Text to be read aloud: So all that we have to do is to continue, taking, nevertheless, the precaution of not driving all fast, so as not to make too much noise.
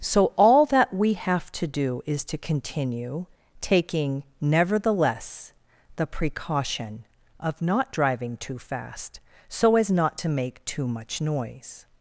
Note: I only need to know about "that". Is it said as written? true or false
true